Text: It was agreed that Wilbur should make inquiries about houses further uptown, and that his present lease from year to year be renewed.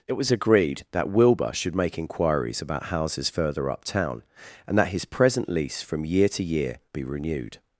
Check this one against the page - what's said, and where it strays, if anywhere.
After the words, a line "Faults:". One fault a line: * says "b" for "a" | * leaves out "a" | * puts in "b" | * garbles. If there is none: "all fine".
It was agreed that Wilbur should make inquiries about houses further uptown, and that his present lease from year to year be renewed.
Faults:
all fine